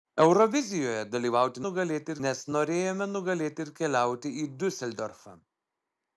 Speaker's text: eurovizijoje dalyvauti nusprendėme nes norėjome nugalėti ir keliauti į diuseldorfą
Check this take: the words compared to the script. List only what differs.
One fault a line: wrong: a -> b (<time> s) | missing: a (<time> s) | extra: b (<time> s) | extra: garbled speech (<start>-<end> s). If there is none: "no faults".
wrong: nusprendėme -> nugalėti (1.7 s)